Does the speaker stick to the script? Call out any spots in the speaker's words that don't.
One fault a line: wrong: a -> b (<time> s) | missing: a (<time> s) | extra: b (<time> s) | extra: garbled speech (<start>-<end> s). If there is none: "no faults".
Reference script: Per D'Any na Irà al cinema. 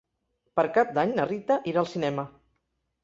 extra: Cap (0.8 s)
extra: Rita (1.3 s)